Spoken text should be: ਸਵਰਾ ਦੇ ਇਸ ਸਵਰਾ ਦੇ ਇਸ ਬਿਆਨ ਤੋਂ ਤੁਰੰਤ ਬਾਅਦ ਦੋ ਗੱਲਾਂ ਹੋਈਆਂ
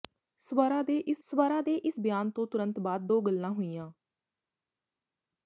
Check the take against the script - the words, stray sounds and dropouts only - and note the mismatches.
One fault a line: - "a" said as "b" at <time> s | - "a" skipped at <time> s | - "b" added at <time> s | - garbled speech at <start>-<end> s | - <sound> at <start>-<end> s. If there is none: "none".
none